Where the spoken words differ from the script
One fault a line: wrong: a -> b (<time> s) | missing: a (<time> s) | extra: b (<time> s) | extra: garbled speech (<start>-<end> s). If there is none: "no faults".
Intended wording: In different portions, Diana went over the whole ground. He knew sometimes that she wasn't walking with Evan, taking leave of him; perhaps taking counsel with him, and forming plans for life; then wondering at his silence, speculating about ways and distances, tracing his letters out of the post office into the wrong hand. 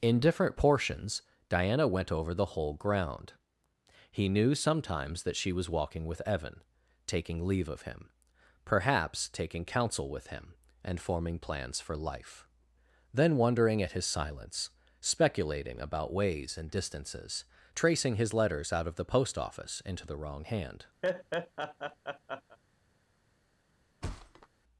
wrong: wasn't -> was (5.5 s)